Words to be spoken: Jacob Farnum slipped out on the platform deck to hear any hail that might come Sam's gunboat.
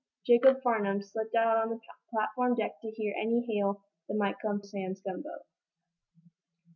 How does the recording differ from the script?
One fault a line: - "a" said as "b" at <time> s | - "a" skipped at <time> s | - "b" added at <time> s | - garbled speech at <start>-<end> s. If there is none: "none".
none